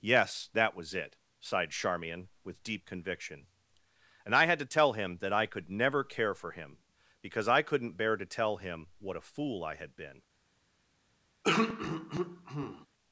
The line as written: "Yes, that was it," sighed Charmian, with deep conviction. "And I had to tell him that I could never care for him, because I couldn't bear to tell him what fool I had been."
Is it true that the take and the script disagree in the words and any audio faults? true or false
true